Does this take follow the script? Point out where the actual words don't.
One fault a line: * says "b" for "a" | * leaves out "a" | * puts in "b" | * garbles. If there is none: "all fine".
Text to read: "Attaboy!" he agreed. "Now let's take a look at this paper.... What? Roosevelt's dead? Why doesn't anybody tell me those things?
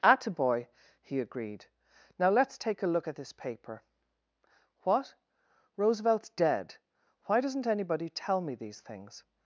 * says "these" for "those"